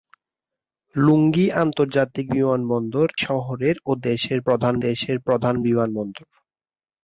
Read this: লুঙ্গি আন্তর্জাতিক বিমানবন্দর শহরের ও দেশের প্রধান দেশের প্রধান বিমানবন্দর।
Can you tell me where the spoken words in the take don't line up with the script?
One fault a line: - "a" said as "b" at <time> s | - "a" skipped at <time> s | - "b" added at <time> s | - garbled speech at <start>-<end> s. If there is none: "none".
none